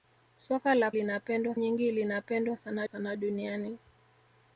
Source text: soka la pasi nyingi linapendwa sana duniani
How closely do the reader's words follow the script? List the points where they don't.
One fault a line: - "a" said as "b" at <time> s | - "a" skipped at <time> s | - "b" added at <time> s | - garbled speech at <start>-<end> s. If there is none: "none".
- "pasi" said as "linapendwa" at 0.9 s
- "sana" added at 2.8 s